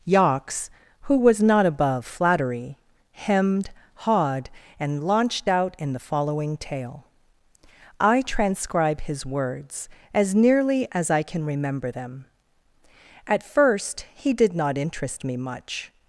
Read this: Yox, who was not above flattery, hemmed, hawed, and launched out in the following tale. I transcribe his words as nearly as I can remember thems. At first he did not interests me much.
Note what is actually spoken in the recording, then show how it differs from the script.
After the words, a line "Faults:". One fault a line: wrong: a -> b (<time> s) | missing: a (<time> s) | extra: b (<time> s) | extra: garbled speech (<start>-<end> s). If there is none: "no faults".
Yox, who was not above flattery, hemmed, hawed, and launched out in the following tale. I transcribe his words as nearly as I can remember them. At first he did not interest me much.
Faults:
wrong: thems -> them (11.9 s)
wrong: interests -> interest (14.8 s)